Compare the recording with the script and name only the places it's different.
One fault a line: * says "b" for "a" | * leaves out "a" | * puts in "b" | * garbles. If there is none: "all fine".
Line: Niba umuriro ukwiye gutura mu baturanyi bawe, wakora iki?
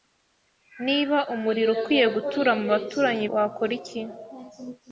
* leaves out "bawe"